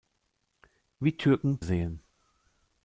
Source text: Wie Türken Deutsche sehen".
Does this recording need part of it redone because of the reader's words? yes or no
yes